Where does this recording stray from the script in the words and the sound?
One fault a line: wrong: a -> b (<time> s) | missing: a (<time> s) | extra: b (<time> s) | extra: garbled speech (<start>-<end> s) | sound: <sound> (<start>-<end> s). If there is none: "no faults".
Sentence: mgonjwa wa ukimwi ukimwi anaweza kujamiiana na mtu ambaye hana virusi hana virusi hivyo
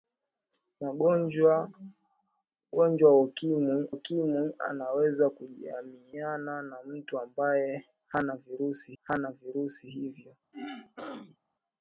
sound: throat clearing (10.5-11.4 s)